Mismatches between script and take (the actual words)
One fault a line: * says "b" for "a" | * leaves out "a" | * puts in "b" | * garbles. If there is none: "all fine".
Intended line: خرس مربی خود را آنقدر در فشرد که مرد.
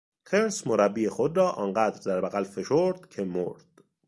* puts in "بغل"